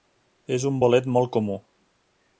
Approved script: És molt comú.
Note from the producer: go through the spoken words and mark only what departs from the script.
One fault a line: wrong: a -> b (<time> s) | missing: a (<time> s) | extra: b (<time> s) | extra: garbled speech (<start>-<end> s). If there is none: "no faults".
extra: un bolet (0.7 s)